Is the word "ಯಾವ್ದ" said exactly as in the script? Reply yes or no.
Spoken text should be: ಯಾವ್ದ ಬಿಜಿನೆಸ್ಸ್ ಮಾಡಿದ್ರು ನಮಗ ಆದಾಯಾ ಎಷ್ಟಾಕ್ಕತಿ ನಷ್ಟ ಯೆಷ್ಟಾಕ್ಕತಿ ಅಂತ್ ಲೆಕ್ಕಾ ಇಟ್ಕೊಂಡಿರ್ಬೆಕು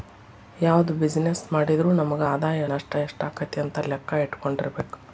yes